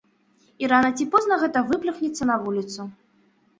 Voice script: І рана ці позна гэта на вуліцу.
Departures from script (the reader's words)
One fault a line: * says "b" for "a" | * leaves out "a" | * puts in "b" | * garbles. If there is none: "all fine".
* puts in "выплюхнецца"